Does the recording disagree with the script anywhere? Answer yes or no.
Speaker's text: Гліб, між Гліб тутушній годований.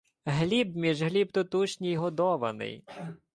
no